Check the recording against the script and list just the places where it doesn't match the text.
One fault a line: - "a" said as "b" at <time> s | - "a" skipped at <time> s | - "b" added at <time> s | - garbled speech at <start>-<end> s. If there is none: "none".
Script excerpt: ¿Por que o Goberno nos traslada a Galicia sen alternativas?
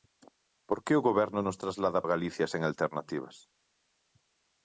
none